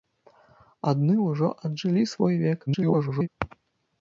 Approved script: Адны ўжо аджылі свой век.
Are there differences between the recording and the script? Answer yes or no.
yes